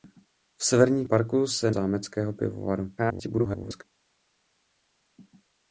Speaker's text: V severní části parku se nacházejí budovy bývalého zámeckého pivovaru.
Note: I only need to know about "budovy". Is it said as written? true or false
false